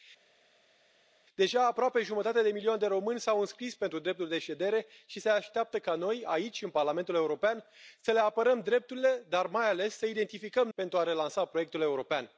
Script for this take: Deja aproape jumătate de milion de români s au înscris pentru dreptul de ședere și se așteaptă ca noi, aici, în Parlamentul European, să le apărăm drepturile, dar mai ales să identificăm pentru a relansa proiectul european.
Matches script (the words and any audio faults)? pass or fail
pass